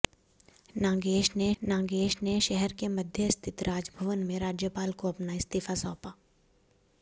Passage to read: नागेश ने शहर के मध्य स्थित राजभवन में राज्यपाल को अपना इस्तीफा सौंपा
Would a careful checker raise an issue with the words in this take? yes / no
yes